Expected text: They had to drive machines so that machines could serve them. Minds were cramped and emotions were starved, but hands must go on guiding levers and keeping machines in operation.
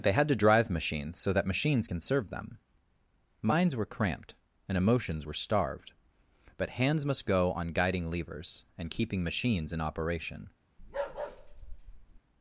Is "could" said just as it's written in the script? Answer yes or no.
no